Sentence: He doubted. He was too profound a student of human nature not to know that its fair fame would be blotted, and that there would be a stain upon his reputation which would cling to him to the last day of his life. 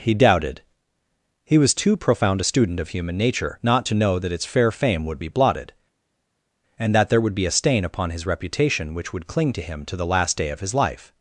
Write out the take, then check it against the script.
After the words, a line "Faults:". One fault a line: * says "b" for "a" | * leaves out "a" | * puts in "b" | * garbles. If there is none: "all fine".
He doubted. He was too profound a student of human nature not to know that its fair fame would be blotted, and that there would be a stain upon his reputation which would cling to him to the last day of his life.
Faults:
all fine